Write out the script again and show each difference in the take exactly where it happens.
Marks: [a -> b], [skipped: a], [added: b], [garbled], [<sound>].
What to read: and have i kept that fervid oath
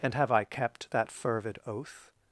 and have i kept that fervid oath